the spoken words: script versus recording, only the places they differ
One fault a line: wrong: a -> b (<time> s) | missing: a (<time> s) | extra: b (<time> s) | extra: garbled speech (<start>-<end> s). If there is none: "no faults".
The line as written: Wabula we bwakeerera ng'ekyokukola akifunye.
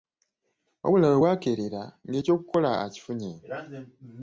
no faults